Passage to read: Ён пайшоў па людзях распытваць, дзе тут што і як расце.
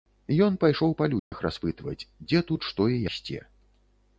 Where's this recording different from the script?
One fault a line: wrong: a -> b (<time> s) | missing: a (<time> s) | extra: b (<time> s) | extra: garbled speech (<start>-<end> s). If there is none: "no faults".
missing: як (3.0 s)